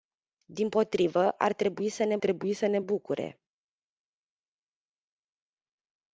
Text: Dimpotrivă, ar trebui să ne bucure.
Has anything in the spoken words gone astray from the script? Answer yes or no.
yes